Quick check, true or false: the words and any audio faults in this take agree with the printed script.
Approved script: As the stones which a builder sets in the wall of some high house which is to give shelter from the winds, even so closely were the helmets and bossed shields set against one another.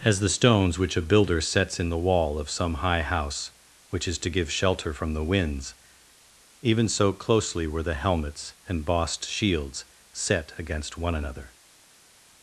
true